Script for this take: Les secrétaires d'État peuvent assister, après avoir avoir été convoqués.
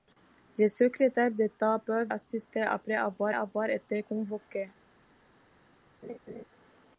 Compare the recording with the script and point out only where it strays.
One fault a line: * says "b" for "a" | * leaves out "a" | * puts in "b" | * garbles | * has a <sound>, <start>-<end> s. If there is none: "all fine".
* has a laugh, 6.0-6.5 s